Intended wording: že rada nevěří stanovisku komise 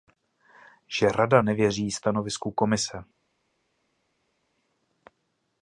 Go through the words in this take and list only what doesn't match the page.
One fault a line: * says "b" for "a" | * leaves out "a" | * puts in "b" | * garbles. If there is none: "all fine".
all fine